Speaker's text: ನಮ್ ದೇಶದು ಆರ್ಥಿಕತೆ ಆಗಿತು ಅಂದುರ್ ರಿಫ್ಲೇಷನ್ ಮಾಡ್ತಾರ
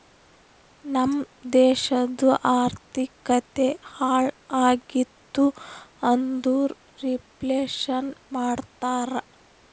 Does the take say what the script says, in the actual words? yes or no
no